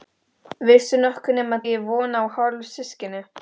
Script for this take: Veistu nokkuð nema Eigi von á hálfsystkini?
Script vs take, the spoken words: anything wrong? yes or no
no